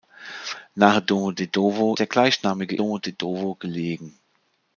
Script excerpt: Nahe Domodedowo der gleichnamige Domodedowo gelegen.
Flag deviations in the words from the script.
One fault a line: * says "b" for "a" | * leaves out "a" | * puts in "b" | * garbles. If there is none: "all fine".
all fine